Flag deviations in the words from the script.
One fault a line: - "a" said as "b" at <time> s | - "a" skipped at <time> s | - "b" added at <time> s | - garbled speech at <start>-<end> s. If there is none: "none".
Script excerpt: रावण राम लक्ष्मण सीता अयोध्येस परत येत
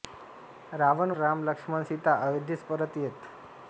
none